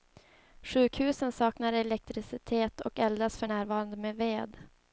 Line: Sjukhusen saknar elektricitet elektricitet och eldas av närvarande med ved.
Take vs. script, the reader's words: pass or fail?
fail